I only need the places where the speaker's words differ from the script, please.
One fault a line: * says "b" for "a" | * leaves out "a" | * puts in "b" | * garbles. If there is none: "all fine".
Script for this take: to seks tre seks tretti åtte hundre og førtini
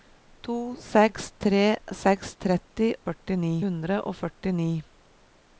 * says "førtini" for "åtte"